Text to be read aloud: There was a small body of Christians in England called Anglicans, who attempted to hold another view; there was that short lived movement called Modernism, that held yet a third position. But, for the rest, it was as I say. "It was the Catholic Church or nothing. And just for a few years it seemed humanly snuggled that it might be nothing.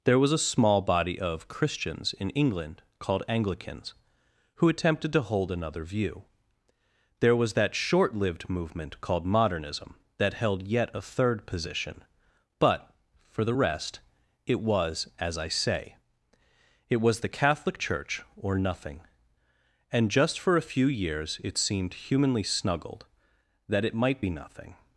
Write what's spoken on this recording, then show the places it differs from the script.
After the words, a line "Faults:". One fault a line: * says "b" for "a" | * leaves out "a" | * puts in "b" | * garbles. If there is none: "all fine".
There was a small body of Christians in England called Anglicans, who attempted to hold another view; there was that short lived movement called Modernism, that held yet a third position. But, for the rest, it was as I say. "It was the Catholic Church or nothing. And just for a few years it seemed humanly snuggled that it might be nothing.
Faults:
all fine